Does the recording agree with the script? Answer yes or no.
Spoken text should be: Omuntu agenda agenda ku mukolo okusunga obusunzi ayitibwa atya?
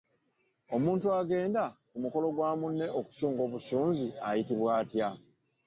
no